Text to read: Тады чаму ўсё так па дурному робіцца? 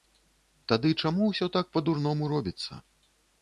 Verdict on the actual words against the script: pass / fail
pass